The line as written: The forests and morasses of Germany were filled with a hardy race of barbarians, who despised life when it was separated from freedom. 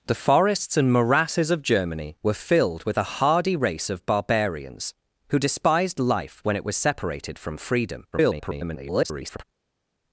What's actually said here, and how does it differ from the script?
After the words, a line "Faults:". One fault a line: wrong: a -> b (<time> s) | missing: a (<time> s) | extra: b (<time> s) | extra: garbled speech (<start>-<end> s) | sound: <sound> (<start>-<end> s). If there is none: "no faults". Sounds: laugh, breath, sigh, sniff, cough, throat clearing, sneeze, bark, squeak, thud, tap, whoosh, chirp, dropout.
The forests and morasses of Germany were filled with a hardy race of barbarians, who despised life when it was separated from freedom. [garbled]
Faults:
extra: garbled speech (8.1-9.4 s)